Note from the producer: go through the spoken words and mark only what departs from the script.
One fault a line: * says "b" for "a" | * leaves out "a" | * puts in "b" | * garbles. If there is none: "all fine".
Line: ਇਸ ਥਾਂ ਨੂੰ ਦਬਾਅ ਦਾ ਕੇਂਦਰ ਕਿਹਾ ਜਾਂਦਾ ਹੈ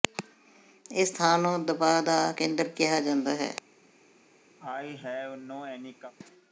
all fine